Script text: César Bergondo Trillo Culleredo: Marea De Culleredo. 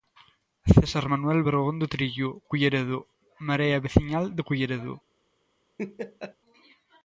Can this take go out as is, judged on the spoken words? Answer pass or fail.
fail